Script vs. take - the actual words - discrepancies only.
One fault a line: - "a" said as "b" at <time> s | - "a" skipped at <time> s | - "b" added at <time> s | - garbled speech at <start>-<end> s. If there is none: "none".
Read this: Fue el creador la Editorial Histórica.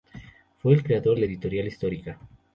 none